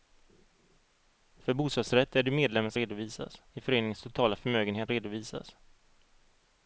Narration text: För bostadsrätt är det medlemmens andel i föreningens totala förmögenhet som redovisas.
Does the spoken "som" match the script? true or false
false